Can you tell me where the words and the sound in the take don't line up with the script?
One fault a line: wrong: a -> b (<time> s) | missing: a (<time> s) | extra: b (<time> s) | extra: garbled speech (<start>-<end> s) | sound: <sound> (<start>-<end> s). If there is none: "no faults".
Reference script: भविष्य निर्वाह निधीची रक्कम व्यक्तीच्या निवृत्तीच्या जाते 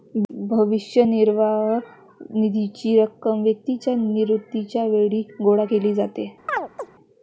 extra: वेळी गोळा केली (4.8 s)
sound: chirp (6.5-6.9 s)